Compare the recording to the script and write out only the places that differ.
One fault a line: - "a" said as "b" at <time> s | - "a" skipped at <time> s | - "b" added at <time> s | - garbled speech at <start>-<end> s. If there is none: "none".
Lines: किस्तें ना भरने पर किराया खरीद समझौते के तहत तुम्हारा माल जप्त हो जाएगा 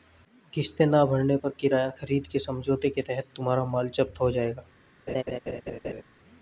- "के" added at 2.3 s